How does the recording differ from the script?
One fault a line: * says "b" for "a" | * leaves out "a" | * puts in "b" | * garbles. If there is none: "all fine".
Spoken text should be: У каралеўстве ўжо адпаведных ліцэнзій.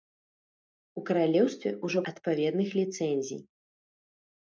all fine